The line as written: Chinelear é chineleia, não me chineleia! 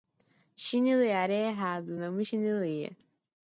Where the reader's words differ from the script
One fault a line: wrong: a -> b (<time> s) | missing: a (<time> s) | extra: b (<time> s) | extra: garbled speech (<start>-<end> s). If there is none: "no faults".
wrong: chineleia -> errado (1.5 s)